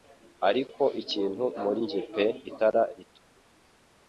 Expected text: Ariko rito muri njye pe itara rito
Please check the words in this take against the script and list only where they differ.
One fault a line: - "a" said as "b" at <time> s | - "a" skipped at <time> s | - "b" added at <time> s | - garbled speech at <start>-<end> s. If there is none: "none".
- "rito" said as "ikintu" at 1.0 s